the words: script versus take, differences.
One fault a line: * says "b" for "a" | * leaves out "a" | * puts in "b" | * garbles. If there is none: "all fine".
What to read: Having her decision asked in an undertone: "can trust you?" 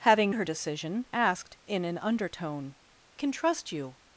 all fine